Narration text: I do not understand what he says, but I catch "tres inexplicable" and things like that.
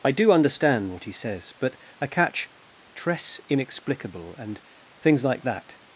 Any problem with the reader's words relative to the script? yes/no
yes